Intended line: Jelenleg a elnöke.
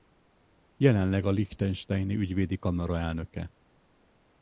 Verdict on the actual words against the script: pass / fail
fail